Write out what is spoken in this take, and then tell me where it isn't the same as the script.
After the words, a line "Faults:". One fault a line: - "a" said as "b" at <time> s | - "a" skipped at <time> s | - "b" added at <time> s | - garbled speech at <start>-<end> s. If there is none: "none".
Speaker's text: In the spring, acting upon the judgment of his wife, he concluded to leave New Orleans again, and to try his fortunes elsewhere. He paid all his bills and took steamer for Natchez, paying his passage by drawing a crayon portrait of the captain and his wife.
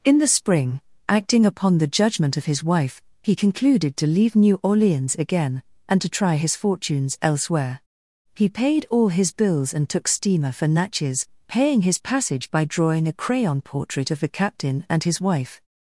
In the spring, acting upon the judgment of his wife, he concluded to leave New Orleans again, and to try his fortunes elsewhere. He paid all his bills and took steamer for Natchez, paying his passage by drawing a crayon portrait of the captain and his wife.
Faults:
none